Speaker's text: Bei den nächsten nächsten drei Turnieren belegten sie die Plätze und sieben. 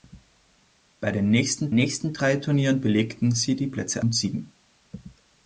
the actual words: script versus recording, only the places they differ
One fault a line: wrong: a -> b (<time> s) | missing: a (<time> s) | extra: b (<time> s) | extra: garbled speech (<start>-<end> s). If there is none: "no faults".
no faults